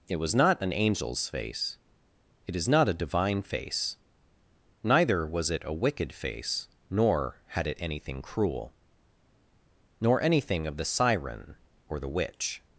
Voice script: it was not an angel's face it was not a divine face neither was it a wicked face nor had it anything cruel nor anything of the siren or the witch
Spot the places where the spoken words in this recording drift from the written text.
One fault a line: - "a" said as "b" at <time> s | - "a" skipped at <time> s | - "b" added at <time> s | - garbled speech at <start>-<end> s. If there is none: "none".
- "was" said as "is" at 2.5 s